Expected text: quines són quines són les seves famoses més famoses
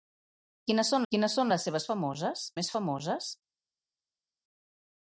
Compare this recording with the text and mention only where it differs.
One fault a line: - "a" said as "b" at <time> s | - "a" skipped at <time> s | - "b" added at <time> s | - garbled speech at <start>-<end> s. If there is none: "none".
none